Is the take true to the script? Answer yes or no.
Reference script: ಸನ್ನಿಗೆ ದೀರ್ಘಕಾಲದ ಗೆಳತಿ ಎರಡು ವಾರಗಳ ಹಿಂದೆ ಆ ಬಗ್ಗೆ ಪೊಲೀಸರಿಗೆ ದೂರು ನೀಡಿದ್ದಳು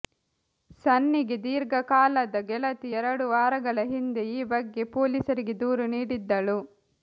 no